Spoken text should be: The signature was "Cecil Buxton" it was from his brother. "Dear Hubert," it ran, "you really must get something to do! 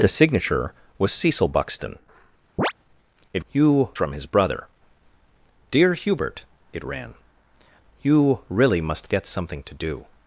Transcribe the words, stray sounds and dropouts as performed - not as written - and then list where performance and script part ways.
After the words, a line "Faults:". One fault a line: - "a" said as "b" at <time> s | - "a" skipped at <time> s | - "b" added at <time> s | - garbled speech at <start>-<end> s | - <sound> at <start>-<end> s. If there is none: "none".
The signature was "Cecil Buxton" it you from his brother. "Dear Hubert," it ran, "you really must get something to do!
Faults:
- chirp at 2.6-2.7 s
- "was" said as "you" at 3.5 s